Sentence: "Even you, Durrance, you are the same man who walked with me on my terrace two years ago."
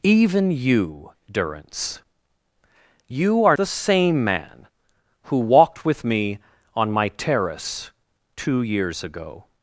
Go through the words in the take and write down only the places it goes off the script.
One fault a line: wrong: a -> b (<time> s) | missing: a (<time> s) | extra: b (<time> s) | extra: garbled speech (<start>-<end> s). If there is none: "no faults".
no faults